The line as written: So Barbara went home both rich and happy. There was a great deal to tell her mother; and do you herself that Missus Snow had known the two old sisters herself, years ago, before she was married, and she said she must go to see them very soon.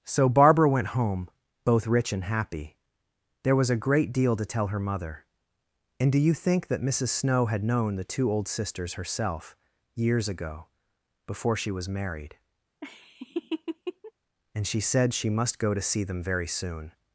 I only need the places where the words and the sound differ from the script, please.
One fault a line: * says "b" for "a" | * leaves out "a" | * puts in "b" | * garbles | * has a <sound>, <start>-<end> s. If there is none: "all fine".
* says "think" for "herself"
* has a laugh, 12.8-14.1 s